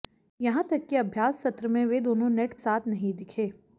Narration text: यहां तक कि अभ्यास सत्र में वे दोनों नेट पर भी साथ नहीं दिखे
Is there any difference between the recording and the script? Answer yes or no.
yes